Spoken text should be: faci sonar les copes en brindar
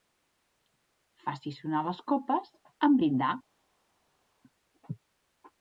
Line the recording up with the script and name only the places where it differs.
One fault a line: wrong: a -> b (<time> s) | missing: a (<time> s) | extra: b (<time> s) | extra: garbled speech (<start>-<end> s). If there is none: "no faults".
no faults